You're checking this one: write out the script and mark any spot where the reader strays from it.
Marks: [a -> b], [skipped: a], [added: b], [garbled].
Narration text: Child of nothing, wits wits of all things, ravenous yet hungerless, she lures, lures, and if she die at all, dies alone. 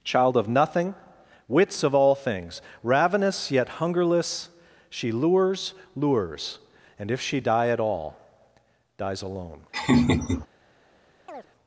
Child of nothing, wits [skipped: wits] of all things, ravenous yet hungerless, she lures, lures, and if she die at all, dies alone.